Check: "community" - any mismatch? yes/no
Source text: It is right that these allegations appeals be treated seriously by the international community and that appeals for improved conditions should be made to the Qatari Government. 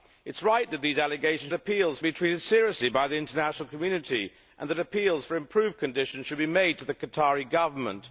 no